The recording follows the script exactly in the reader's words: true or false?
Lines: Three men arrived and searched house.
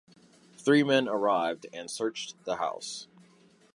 false